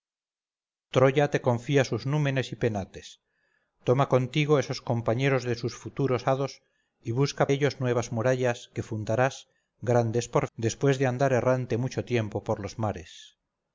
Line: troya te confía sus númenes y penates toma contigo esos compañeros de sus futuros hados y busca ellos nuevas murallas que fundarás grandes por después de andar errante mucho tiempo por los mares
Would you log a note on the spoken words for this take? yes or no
no